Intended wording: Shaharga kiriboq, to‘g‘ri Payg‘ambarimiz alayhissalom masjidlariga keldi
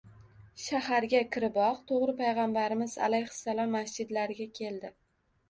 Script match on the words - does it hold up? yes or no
yes